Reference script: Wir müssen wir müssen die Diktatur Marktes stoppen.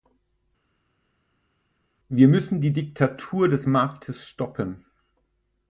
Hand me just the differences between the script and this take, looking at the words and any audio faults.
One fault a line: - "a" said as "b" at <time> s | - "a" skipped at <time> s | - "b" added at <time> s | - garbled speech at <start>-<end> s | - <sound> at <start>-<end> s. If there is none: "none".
- "wir müssen" skipped at 2.6 s
- "des" added at 3.5 s